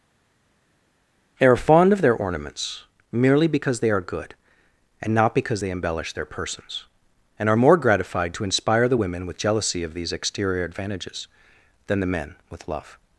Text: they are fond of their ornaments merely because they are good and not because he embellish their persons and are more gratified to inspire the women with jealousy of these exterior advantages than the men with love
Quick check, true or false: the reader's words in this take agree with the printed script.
false